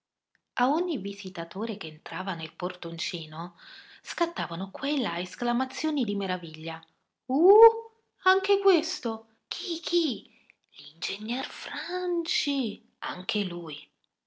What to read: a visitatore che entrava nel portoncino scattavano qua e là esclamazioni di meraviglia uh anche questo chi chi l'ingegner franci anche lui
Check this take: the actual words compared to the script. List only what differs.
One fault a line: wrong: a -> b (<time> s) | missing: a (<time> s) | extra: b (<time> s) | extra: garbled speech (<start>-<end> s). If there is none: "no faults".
extra: ogni (0.7 s)